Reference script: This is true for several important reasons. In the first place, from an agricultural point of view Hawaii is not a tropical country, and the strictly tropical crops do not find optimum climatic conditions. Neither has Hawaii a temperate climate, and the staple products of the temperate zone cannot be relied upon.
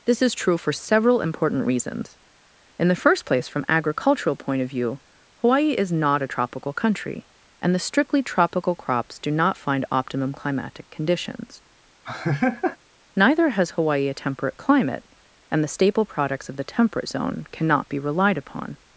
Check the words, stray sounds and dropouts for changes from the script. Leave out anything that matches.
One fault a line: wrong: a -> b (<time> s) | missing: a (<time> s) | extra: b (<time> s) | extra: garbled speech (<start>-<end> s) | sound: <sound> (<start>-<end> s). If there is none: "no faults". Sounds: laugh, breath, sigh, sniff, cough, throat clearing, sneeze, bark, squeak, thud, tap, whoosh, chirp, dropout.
missing: an (3.6 s)
sound: laugh (12.0-12.8 s)